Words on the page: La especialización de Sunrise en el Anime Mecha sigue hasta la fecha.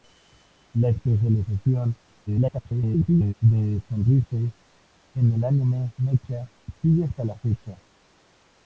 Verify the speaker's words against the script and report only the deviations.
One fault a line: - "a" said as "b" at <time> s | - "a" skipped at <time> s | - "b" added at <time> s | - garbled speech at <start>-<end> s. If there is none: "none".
- garbled speech at 2.3-3.3 s